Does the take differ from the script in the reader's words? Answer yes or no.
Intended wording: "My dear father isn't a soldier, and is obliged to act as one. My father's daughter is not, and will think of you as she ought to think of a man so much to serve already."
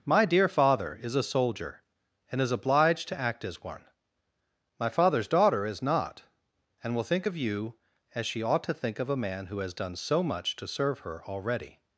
yes